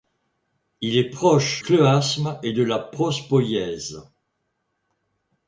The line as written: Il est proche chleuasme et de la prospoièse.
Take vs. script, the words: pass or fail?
pass